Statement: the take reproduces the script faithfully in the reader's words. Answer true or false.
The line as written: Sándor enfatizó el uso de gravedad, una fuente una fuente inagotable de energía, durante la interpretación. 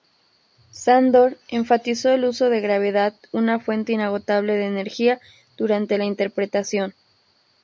false